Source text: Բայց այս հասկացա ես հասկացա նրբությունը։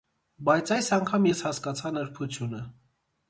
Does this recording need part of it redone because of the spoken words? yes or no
yes